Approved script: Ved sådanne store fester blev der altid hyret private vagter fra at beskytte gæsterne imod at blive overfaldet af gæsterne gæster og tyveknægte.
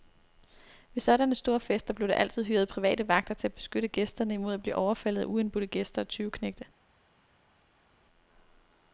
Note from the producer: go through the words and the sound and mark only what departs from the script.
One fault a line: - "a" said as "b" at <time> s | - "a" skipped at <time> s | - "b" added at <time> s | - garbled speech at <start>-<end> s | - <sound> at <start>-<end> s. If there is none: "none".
- "fra" said as "til" at 3.3 s
- "gæsterne" said as "uindbudte" at 5.3 s